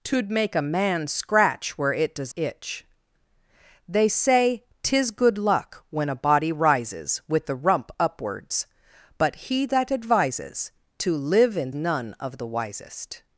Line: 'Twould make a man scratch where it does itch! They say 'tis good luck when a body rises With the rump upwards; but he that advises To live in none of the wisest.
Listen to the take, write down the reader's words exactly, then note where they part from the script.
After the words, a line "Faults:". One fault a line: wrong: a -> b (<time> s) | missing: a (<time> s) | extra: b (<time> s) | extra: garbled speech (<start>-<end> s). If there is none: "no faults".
'Twould make a man scratch where it does itch! They say 'tis good luck when a body rises With the rump upwards; but he that advises To live in none of the wisest.
Faults:
no faults